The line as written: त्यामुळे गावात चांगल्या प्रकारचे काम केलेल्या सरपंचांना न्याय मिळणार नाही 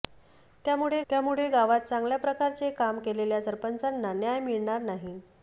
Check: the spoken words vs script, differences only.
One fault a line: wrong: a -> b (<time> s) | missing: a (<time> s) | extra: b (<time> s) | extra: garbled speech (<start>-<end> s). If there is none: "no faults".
extra: त्यामुळे (1.1 s)